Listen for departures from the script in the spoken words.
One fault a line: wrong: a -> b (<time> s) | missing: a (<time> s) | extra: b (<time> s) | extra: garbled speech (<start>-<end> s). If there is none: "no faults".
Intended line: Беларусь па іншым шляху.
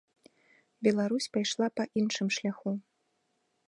extra: пайшла (1.4 s)